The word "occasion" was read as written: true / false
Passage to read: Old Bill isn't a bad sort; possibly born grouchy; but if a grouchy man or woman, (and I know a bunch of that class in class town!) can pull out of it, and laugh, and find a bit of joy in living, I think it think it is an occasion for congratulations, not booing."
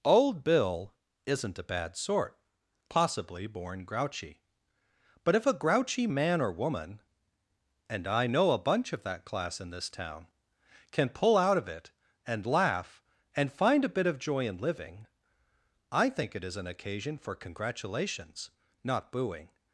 true